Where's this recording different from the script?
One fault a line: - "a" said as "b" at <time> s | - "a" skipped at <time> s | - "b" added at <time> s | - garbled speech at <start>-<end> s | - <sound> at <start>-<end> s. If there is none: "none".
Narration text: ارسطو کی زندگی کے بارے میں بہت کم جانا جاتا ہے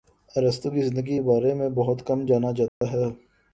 - dropout at 2.7-2.8 s